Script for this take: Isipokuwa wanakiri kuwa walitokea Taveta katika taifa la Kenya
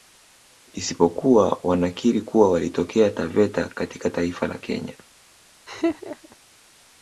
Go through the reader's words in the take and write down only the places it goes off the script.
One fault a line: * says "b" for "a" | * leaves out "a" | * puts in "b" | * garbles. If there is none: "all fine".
all fine